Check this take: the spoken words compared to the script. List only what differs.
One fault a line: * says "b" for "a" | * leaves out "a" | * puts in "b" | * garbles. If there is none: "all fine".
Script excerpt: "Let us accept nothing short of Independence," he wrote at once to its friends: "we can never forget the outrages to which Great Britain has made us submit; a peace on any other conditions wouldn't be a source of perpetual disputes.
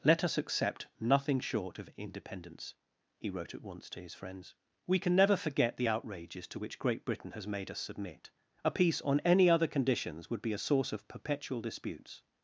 * says "his" for "its"
* says "would" for "wouldn't"